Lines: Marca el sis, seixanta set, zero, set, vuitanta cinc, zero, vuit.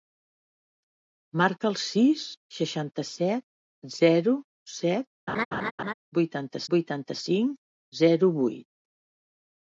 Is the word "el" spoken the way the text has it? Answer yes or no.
yes